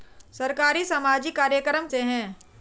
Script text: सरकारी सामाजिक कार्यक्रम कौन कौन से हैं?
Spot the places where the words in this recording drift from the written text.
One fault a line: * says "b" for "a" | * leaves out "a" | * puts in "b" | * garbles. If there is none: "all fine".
* leaves out "कौन कौन"